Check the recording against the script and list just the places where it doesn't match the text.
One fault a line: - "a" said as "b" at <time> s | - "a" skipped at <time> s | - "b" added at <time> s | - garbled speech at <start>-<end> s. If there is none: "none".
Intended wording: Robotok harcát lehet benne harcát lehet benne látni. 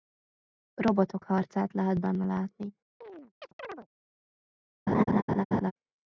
- "harcát lehet benne" skipped at 2.3 s